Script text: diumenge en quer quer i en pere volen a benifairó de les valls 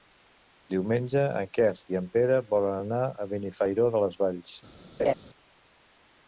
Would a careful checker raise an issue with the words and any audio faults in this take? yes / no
yes